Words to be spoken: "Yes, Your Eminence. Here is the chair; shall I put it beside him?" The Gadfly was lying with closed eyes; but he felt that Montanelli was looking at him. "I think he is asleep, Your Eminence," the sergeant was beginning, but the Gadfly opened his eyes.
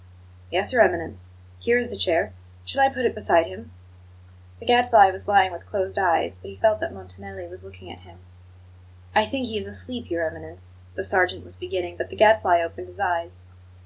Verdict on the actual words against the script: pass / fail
pass